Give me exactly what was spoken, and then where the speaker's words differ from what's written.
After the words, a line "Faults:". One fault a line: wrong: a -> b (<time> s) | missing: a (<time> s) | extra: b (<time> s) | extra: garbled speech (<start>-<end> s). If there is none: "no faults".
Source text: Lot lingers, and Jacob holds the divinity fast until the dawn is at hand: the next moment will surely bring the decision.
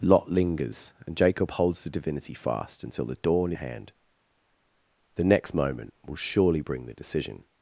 Lot lingers, and Jacob holds the divinity fast until the dawn hand: the next moment will surely bring the decision.
Faults:
missing: is at (3.5 s)